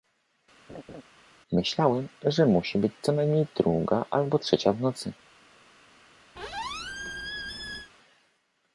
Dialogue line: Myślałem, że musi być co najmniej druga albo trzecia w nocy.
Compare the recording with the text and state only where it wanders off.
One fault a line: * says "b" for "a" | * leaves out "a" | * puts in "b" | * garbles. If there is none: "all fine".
all fine